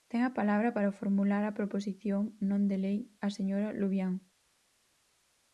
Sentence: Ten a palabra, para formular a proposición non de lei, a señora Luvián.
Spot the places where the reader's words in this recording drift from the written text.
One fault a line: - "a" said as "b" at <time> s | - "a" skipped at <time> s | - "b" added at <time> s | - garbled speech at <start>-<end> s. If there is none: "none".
none